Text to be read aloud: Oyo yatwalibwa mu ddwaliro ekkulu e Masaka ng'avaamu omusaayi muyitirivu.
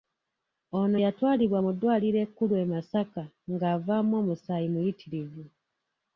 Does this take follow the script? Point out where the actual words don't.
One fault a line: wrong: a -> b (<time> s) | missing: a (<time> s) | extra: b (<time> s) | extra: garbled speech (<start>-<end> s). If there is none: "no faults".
wrong: Oyo -> Ono (0.8 s)